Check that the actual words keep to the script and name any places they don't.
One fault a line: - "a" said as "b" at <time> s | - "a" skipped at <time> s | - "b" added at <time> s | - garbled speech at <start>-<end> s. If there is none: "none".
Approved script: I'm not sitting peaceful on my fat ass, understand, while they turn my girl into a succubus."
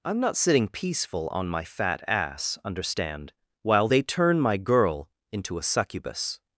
none